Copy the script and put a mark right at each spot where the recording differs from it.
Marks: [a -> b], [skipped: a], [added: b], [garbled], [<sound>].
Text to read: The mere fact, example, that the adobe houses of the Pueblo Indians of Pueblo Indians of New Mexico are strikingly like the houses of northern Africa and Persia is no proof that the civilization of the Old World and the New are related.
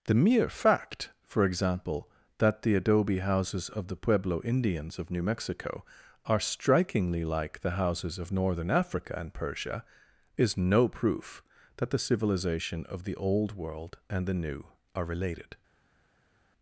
The mere fact, [added: for] example, that the adobe houses of the Pueblo Indians of [skipped: Pueblo Indians of] New Mexico are strikingly like the houses of northern Africa and Persia is no proof that the civilization of the Old World and the New are related.